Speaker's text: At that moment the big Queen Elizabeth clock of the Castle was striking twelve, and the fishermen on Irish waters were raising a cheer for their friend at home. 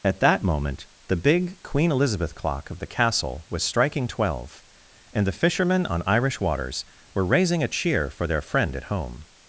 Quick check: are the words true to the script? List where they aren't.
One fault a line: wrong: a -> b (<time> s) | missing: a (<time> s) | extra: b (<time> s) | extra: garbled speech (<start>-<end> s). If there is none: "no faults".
no faults